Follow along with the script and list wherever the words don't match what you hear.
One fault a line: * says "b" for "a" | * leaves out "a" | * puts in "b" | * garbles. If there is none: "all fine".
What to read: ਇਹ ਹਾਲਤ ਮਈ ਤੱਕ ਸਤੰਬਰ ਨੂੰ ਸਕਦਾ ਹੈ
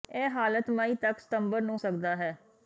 all fine